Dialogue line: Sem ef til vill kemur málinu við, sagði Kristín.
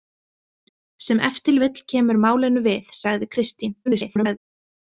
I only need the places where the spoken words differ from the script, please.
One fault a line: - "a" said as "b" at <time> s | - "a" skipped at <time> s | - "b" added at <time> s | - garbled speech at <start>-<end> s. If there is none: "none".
- garbled speech at 3.9-4.4 s